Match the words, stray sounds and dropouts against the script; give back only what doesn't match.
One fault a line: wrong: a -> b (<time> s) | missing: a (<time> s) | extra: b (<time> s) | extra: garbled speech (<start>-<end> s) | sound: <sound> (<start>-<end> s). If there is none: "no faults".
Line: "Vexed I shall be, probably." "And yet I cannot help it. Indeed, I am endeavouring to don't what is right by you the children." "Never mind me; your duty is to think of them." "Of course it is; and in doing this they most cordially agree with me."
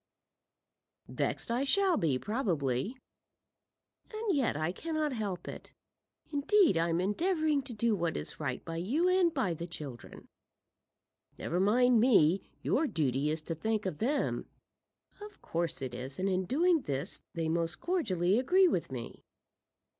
wrong: don't -> do (7.7 s)
extra: and by (9.1 s)